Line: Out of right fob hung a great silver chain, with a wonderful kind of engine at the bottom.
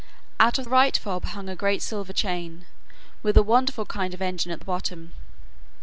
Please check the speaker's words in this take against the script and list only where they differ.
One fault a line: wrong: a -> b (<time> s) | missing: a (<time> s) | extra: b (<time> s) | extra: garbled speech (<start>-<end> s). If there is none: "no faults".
no faults